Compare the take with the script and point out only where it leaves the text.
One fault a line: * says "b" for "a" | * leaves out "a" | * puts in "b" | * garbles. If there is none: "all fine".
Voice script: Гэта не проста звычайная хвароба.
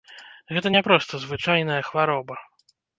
all fine